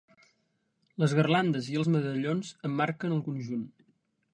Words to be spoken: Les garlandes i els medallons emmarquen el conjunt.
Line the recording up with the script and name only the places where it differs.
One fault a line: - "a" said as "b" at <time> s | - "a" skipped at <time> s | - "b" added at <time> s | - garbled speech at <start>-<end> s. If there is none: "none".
none